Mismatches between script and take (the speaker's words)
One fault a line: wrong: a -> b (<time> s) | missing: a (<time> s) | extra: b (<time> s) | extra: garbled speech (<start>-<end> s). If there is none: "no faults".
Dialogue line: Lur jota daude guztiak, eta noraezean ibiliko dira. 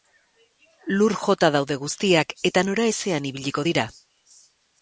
no faults